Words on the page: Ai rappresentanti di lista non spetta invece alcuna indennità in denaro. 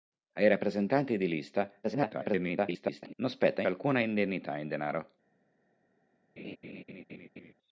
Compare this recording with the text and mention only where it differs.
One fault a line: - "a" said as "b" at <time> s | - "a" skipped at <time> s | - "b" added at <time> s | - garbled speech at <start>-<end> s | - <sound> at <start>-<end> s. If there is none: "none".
- garbled speech at 1.8-3.1 s
- "invece" skipped at 3.6 s
- laugh at 6.4-7.5 s